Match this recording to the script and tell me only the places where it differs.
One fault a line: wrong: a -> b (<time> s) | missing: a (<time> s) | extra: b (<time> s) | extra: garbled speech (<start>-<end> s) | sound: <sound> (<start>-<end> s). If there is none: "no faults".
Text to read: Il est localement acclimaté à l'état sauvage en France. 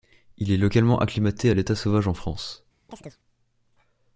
sound: chirp (2.9-3.2 s)